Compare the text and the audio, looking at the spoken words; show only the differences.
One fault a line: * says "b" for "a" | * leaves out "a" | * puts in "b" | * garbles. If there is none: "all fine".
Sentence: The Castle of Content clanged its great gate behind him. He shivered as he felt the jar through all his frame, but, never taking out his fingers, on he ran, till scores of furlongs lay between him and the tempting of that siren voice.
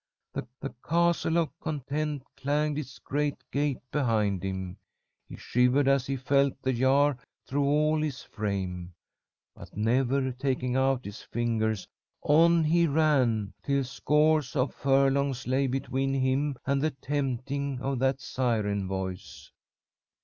* puts in "the"